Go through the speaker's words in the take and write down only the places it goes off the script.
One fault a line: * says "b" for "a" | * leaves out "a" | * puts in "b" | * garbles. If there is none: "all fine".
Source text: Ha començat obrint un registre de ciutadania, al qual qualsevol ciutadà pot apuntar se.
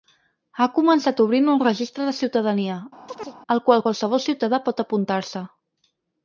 all fine